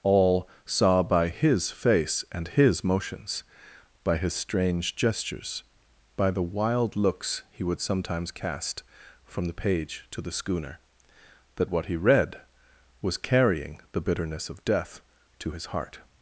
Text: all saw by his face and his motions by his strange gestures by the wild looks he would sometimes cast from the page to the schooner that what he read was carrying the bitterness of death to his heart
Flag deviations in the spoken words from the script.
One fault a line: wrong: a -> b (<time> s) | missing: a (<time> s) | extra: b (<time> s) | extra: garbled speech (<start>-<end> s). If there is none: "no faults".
no faults